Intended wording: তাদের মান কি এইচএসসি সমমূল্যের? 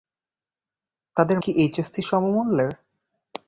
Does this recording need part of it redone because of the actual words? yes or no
yes